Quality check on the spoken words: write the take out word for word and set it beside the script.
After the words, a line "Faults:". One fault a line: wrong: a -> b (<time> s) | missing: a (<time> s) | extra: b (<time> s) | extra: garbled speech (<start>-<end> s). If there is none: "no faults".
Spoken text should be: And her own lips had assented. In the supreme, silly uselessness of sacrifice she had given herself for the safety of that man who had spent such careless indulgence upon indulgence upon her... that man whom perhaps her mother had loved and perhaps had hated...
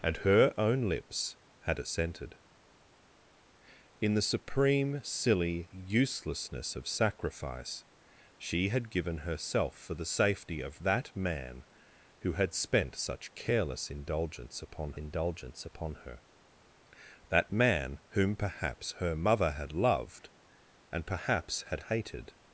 And her own lips had assented. In the supreme, silly uselessness of sacrifice she had given herself for the safety of that man who had spent such careless indulgence upon indulgence upon her... that man whom perhaps her mother had loved and perhaps had hated...
Faults:
no faults